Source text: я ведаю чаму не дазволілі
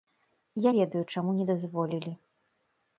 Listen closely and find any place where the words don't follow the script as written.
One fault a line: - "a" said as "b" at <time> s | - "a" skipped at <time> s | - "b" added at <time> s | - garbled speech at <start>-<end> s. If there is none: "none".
none